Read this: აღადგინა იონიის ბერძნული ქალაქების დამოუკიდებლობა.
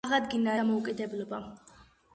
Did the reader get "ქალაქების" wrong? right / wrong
wrong